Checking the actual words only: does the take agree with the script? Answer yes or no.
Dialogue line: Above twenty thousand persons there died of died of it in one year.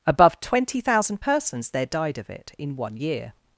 no